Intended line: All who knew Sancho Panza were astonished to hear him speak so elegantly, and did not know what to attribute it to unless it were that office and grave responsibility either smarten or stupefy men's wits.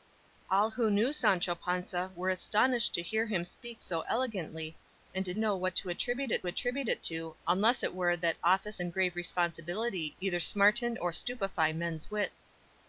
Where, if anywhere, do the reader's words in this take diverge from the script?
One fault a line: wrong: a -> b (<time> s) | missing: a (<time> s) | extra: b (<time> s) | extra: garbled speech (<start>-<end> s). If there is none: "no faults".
missing: not (5.4 s)
extra: attribute it (6.5 s)